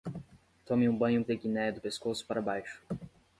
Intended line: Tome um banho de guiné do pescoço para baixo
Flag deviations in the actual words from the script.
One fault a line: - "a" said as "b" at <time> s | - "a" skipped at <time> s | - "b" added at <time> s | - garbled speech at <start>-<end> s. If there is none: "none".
none